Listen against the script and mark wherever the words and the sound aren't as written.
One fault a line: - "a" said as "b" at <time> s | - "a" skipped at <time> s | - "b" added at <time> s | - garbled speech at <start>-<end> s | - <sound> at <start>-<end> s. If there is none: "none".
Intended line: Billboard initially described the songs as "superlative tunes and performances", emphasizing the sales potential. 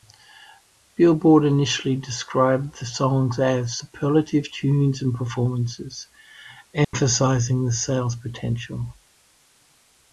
- dropout at 6.8-6.9 s